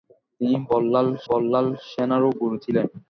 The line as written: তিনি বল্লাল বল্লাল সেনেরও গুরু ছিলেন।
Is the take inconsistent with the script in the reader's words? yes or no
no